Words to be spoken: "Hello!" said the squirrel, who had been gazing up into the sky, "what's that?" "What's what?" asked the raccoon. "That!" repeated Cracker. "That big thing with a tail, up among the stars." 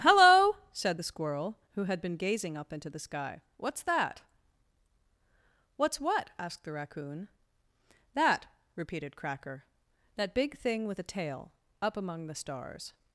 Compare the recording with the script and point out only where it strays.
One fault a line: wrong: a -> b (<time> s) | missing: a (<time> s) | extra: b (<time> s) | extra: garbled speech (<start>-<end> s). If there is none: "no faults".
no faults